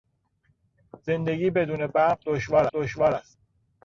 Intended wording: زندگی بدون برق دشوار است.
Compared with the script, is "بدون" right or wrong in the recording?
right